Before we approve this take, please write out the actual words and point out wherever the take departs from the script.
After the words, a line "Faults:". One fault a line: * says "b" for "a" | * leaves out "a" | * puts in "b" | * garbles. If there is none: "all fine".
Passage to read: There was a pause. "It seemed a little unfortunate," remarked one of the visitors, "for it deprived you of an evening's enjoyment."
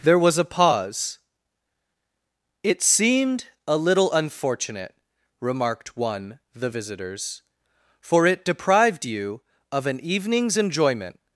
There was a pause. "It seemed a little unfortunate," remarked one the visitors, "for it deprived you of an evening's enjoyment."
Faults:
* leaves out "of"